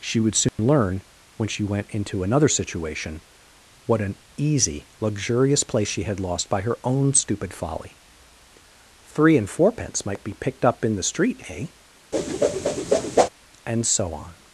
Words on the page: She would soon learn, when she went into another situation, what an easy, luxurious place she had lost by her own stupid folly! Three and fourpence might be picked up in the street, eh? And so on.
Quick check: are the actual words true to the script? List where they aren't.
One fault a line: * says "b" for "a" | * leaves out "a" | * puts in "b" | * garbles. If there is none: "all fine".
all fine